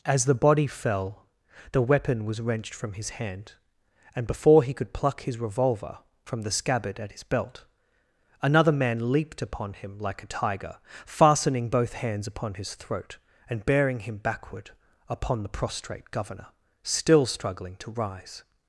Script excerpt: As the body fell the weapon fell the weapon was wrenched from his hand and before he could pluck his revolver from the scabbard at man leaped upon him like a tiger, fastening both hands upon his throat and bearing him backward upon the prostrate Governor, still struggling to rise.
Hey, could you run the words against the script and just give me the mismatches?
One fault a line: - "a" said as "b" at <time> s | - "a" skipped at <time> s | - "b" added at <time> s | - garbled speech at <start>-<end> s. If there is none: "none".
- "fell the weapon" skipped at 2.2 s
- "his belt another" added at 7.1 s